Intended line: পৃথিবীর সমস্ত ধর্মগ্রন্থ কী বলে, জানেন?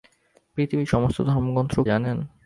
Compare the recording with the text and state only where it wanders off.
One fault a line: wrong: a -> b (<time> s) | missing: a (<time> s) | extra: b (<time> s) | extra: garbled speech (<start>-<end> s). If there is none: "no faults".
missing: কী বলে (1.7 s)